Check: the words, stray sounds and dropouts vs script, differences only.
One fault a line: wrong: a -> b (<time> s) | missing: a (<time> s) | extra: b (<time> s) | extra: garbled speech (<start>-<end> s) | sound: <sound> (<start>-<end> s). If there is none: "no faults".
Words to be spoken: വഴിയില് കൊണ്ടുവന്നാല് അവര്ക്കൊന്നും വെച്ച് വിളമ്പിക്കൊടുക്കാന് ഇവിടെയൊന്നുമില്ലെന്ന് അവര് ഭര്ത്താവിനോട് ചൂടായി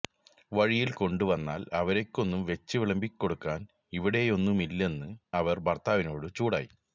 no faults